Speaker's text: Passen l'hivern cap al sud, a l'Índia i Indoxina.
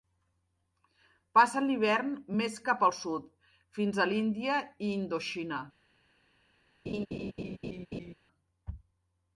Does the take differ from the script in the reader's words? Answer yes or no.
yes